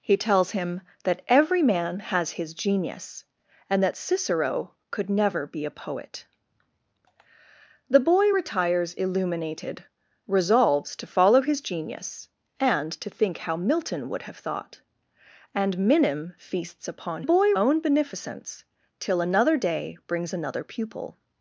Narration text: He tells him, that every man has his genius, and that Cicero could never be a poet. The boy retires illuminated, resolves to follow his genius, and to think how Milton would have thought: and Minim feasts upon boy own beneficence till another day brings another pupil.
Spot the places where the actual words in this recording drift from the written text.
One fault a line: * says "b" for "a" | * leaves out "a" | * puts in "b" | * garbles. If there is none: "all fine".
all fine